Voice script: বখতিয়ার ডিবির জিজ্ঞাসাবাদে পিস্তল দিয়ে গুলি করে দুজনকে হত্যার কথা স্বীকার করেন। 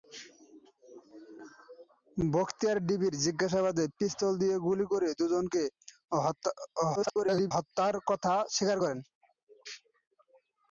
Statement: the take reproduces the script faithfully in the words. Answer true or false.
false